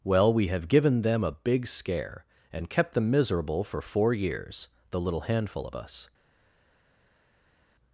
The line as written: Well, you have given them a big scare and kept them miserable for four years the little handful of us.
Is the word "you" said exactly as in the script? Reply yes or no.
no